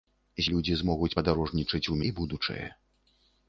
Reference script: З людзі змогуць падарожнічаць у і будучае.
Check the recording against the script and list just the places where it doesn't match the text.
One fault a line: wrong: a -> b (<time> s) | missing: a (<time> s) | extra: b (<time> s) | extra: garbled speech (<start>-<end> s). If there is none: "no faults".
no faults